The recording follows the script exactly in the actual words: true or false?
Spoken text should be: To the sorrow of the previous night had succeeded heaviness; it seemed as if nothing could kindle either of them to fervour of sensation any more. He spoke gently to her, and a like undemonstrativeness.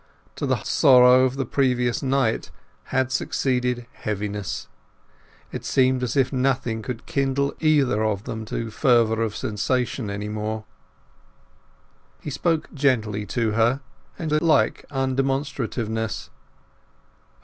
true